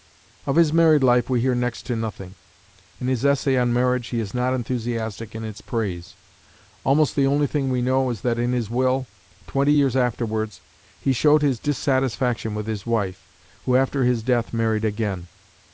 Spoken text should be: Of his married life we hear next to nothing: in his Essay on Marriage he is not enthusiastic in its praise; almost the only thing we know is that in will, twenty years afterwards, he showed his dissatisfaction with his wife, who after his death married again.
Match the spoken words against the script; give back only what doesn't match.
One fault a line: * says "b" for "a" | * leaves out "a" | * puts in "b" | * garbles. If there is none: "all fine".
* puts in "his"